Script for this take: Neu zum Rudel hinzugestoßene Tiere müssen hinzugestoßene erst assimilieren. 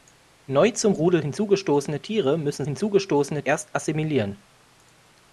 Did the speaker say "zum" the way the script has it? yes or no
yes